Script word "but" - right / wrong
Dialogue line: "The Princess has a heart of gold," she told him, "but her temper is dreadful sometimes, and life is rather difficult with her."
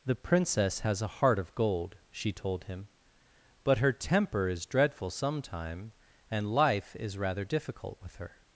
right